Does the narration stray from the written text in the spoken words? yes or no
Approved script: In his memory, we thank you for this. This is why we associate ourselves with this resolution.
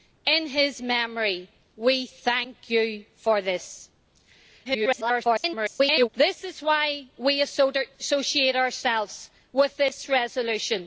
yes